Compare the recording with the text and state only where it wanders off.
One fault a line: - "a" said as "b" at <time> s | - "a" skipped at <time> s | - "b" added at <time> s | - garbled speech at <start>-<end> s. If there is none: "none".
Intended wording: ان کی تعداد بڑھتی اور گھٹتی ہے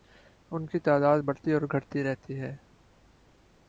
- "رہتی" added at 2.0 s